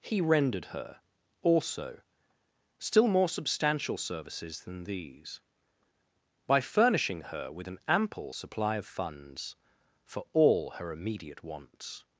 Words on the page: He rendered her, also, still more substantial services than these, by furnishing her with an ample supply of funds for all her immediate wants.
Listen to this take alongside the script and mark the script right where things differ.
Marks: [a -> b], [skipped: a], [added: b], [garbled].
He rendered her, also, still more substantial services than these, by furnishing her with an ample supply of funds for all her immediate wants.